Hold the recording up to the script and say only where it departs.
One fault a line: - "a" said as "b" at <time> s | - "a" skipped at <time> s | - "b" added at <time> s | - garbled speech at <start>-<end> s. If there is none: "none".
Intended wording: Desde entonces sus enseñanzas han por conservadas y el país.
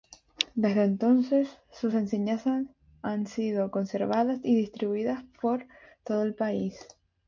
- "por" said as "sido" at 3.3 s
- "distribuidas por todo" added at 4.5 s